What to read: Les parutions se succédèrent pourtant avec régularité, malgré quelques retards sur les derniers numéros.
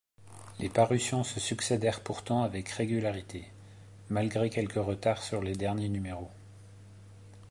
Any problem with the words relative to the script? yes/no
no